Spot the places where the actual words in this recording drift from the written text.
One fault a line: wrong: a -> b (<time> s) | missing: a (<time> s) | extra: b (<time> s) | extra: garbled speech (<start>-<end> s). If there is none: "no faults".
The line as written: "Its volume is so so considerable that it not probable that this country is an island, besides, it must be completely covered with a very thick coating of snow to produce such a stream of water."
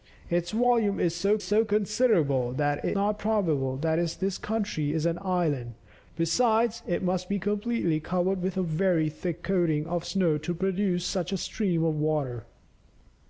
no faults